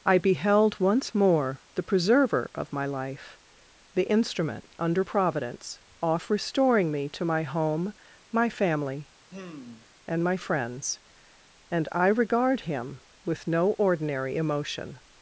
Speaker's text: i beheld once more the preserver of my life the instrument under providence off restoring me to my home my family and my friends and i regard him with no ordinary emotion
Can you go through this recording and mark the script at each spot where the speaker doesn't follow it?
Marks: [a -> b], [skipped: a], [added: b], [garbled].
i beheld once more the preserver of my life the instrument under providence off restoring me to my home my family and my friends and i regard him with no ordinary emotion